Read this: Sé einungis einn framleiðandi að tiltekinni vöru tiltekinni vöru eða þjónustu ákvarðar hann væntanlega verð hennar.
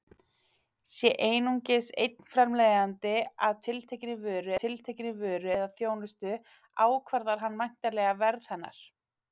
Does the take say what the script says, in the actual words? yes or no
yes